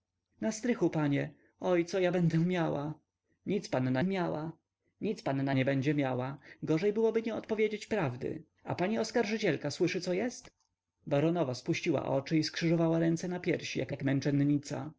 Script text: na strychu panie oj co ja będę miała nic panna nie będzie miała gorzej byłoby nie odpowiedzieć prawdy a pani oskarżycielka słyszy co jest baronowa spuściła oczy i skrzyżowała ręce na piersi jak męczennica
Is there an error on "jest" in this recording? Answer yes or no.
no